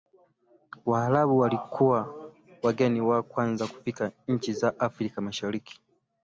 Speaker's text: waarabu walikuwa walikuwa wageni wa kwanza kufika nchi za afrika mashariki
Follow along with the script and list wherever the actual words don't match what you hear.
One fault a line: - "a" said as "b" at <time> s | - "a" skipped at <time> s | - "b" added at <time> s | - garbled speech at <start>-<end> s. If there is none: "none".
- "walikuwa" skipped at 2.3 s